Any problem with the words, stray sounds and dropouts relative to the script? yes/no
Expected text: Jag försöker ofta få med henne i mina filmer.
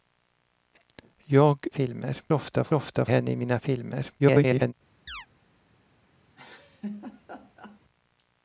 yes